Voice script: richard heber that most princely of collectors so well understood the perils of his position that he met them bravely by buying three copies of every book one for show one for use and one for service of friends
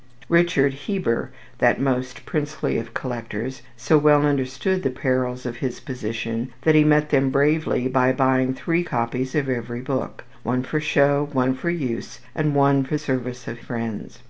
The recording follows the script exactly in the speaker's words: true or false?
true